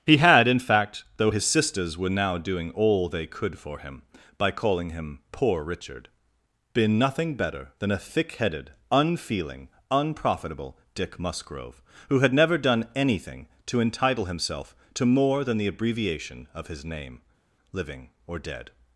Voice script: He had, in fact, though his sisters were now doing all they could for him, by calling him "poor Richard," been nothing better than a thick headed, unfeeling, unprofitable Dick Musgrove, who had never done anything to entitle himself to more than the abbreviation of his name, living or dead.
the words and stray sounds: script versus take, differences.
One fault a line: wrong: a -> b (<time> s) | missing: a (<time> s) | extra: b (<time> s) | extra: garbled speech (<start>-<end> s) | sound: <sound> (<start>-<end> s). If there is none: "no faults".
no faults